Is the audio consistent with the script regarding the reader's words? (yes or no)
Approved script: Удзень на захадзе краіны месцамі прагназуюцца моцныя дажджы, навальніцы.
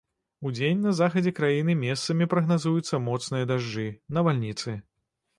yes